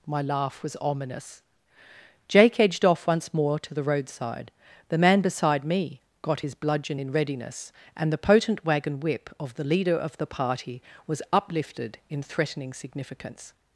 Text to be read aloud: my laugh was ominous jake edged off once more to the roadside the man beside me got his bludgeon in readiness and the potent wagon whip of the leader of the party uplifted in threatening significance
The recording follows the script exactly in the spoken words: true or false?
false